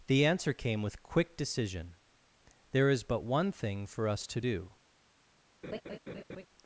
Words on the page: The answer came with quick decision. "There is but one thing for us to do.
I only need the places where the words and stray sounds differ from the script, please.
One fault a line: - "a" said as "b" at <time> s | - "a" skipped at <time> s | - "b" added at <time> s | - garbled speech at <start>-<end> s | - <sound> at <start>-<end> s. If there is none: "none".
- laugh at 5.6-6.5 s